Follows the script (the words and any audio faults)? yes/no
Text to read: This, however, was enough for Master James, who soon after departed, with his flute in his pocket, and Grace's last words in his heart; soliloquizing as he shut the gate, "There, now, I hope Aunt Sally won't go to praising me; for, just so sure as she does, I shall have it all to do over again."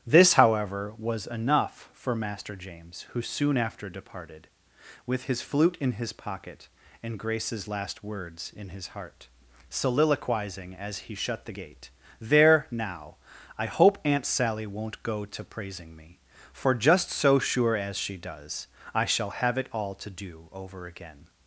yes